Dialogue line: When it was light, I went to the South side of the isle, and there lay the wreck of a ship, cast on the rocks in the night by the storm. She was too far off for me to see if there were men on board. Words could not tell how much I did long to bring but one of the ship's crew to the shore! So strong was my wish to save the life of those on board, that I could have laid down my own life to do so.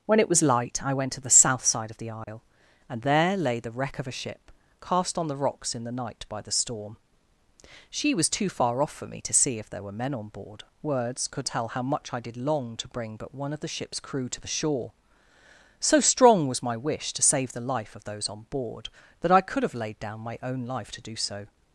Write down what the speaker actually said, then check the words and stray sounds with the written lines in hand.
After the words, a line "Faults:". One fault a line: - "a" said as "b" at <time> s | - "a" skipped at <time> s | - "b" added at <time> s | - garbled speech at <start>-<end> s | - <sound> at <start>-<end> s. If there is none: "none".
When it was light, I went to the South side of the isle, and there lay the wreck of a ship, cast on the rocks in the night by the storm. She was too far off for me to see if there were men on board. Words could tell how much I did long to bring but one of the ship's crew to the shore! So strong was my wish to save the life of those on board, that I could have laid down my own life to do so.
Faults:
- dropout at 2.2-2.3 s
- "not" skipped at 11.5 s